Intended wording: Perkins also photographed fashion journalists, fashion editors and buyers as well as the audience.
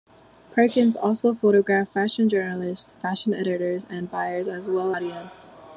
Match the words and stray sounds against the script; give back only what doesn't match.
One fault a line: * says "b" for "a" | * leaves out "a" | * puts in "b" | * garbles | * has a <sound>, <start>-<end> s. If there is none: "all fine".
* leaves out "as the"